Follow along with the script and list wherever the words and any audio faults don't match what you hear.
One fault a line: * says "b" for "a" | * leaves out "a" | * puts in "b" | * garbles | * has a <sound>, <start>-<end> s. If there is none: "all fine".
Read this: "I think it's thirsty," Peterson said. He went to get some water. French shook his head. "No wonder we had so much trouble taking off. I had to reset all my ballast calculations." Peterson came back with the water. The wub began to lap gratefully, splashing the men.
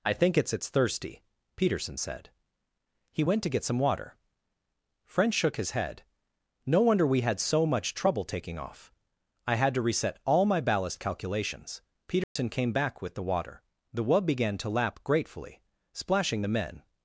* puts in "it's"
* has a dropout, 12.2-12.4 s